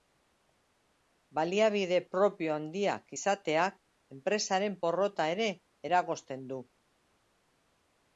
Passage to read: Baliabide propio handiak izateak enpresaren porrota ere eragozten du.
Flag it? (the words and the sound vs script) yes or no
no